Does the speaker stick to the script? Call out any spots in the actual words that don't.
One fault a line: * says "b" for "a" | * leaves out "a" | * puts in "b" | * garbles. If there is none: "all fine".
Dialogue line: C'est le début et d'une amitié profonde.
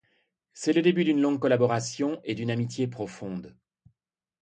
* puts in "d'une longue collaboration"